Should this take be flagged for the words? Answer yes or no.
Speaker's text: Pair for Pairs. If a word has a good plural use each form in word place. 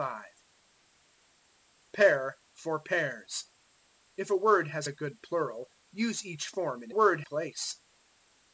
no